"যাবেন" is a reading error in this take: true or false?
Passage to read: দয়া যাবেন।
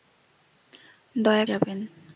false